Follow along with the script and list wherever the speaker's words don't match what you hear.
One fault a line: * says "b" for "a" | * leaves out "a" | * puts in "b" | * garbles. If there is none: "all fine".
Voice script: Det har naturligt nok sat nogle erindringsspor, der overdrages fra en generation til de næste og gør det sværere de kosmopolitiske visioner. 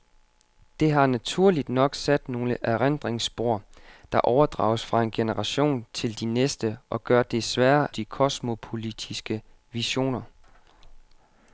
all fine